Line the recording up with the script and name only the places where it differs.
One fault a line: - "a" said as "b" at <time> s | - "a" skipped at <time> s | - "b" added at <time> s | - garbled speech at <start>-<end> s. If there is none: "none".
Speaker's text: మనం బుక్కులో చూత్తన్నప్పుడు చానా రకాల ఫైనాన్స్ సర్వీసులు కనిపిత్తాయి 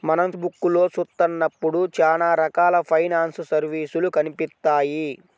none